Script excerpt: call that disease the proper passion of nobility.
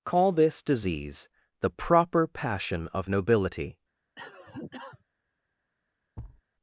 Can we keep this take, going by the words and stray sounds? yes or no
no